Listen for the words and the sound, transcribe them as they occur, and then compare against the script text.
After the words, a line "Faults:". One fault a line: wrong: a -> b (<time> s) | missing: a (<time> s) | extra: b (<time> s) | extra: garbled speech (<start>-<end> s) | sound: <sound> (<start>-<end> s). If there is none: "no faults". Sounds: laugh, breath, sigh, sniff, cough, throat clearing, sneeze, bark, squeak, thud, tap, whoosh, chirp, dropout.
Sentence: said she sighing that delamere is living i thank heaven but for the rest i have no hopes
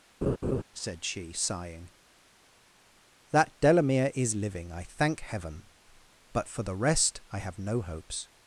said she sighing that delamere is living i thank heaven but for the rest i have no hopes
Faults:
sound: laugh (0.2-0.6 s)